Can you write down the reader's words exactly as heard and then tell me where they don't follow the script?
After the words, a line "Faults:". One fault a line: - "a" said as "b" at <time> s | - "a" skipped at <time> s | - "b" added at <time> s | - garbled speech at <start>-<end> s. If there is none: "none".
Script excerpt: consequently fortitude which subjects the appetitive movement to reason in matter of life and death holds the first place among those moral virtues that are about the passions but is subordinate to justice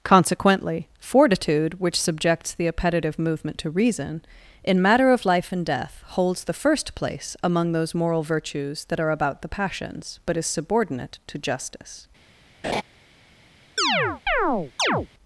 consequently fortitude which subjects the appetitive movement to reason in matter of life and death holds the first place among those moral virtues that are about the passions but is subordinate to justice
Faults:
none